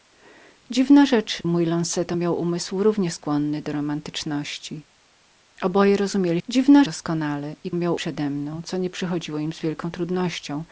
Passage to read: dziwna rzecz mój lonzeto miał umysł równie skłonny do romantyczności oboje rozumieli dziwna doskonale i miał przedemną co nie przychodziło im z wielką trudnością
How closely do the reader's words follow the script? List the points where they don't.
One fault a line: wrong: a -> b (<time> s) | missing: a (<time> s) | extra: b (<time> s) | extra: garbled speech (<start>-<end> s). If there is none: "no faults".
no faults